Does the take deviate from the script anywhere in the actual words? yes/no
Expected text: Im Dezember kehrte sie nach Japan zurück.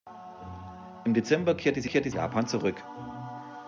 yes